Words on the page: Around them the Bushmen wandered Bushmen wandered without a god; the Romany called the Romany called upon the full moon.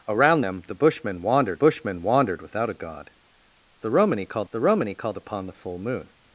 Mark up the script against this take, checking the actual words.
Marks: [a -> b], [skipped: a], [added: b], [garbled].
Around them the Bushmen wandered Bushmen wandered without a god; the Romany called the Romany called upon the full moon.